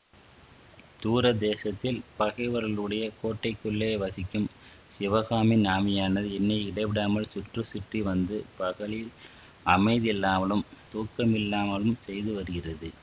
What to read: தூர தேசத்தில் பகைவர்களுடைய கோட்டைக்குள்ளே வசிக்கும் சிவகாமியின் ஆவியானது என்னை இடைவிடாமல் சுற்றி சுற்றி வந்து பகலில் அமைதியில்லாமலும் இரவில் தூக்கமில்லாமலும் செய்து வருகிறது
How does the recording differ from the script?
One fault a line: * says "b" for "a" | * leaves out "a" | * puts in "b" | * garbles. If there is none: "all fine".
* leaves out "இரவில்"